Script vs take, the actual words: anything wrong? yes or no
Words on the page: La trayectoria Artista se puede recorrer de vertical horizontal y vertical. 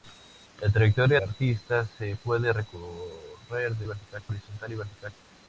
no